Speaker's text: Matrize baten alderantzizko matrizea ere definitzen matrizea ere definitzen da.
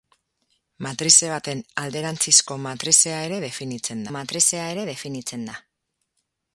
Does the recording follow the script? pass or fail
pass